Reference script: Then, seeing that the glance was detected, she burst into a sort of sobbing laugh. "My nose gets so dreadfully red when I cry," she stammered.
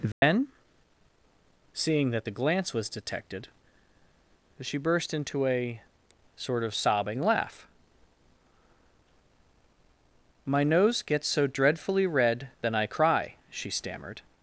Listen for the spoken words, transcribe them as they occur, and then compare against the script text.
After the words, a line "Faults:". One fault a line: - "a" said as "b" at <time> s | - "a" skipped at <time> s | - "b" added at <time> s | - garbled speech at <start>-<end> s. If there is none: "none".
Then, seeing that the glance was detected, she burst into a sort of sobbing laugh. "My nose gets so dreadfully red then I cry," she stammered.
Faults:
- "when" said as "then" at 12.6 s